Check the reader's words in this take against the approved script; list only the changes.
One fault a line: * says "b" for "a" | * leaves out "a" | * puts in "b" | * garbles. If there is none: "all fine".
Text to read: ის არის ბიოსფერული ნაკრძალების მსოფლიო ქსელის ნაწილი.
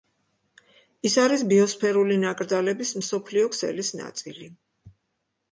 all fine